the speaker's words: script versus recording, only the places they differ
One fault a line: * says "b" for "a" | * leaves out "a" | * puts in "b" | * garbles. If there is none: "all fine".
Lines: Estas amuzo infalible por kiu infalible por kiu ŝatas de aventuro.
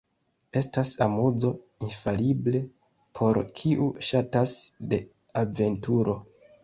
* leaves out "infalible por kiu"